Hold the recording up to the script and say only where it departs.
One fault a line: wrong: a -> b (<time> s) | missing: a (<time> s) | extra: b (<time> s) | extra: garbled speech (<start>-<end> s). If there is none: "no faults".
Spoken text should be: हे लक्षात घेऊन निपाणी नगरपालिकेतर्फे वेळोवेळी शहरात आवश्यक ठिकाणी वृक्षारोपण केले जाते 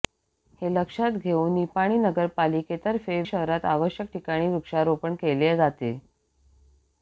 missing: वेळोवेळी (3.2 s)